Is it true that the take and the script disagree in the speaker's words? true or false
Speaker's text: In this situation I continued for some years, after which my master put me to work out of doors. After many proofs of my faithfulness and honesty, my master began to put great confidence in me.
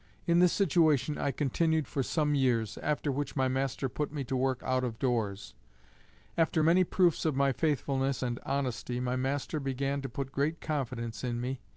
false